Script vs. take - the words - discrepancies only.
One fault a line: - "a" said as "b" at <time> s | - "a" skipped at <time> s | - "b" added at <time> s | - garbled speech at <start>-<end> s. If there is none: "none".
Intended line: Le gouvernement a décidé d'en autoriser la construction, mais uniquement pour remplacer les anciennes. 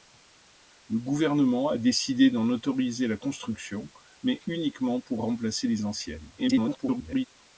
- garbled speech at 6.4-7.3 s